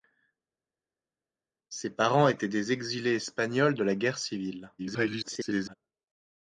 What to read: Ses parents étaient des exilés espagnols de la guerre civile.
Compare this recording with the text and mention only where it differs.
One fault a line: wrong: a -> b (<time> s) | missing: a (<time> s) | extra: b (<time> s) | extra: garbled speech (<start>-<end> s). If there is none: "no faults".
extra: garbled speech (4.8-5.8 s)